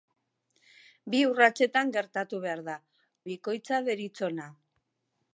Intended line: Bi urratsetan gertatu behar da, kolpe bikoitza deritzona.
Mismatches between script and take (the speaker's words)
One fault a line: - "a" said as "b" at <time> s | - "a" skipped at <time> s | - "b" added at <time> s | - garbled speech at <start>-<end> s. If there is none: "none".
- "kolpe" skipped at 2.8 s